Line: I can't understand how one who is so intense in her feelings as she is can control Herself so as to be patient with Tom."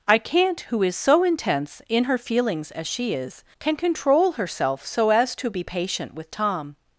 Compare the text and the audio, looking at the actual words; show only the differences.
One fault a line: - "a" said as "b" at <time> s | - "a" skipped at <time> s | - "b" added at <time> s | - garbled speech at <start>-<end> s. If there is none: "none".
- "understand how one" skipped at 0.6 s